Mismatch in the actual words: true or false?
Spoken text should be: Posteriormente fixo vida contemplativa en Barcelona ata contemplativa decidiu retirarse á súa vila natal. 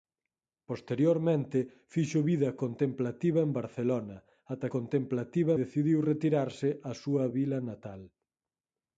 false